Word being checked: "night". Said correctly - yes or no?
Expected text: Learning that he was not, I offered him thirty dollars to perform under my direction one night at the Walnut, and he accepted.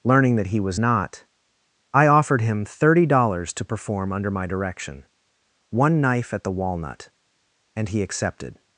no